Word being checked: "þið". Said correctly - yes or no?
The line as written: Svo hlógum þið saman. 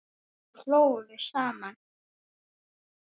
no